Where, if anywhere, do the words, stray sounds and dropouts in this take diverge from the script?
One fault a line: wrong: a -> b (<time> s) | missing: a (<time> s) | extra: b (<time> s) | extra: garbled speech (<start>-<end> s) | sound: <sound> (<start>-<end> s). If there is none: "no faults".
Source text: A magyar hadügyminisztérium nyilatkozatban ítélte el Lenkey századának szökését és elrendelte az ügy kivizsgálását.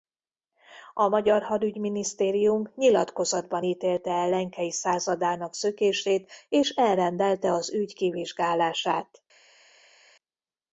no faults